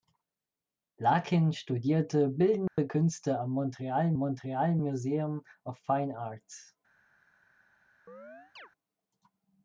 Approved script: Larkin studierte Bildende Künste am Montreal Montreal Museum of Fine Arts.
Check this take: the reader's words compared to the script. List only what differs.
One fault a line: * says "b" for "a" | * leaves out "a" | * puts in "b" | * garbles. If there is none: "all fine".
all fine